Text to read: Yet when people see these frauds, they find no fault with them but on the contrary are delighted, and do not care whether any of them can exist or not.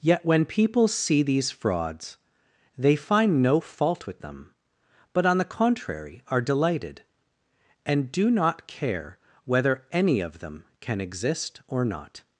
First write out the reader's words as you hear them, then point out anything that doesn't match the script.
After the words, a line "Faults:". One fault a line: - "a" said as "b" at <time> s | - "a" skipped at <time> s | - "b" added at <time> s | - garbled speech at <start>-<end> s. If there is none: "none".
Yet when people see these frauds, they find no fault with them but on the contrary are delighted, and do not care whether any of them can exist or not.
Faults:
none